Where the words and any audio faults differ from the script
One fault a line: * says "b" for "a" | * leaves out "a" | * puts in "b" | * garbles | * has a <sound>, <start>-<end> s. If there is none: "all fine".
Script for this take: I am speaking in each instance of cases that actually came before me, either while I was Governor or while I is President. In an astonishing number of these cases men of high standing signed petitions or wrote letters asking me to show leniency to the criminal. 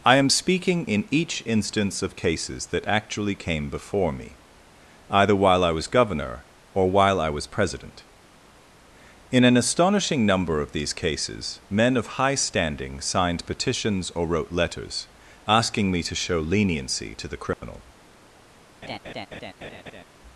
* says "was" for "is"
* has a dropout, 17.5-17.6 s
* has a laugh, 18.8-20.0 s